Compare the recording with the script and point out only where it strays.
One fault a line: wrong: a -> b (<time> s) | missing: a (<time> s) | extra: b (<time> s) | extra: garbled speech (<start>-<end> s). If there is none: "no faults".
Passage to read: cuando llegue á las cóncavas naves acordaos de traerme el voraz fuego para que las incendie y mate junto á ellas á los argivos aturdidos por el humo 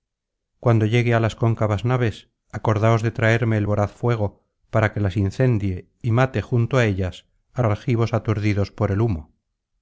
missing: los (7.6 s)